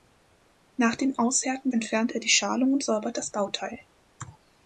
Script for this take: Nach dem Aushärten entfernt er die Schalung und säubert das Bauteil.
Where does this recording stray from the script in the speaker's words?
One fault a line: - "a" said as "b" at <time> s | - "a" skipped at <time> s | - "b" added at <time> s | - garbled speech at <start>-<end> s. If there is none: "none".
none